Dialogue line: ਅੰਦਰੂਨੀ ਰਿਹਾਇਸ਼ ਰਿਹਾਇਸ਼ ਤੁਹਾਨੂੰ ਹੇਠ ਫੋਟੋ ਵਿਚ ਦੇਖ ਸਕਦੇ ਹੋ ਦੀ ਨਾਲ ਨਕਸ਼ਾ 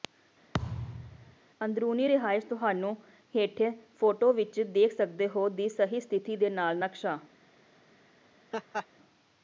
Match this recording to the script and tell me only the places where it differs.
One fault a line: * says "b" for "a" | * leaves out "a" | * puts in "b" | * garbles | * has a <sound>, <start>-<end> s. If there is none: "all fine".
* has a thud, 0.5-1.4 s
* leaves out "ਰਿਹਾਇਸ਼"
* puts in "ਸਹੀ ਸਥਿਤੀ ਦੇ"
* has a laugh, 8.5-8.9 s